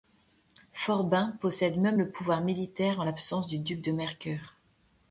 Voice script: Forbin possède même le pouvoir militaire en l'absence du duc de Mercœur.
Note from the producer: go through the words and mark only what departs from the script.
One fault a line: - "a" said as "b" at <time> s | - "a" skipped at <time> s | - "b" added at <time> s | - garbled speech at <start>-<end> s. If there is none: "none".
none